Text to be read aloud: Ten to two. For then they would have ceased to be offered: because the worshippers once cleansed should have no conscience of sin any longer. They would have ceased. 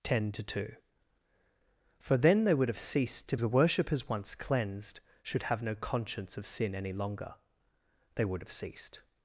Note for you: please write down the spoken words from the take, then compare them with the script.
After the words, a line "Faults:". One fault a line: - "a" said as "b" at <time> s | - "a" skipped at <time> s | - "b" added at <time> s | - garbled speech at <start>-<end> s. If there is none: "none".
Ten to two. For then they would have ceased to the worshippers once cleansed should have no conscience of sin any longer. They would have ceased.
Faults:
- "be offered because" skipped at 3.4 s